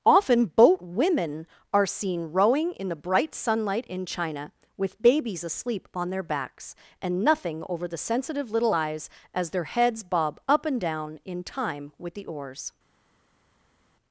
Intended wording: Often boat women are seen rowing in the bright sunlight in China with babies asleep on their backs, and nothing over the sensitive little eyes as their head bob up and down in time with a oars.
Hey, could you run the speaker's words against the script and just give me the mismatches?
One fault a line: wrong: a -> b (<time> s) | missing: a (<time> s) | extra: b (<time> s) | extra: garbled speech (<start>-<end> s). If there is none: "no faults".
wrong: head -> heads (9.6 s)
wrong: a -> the (12.1 s)